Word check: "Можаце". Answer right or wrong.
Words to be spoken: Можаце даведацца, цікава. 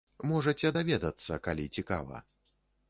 right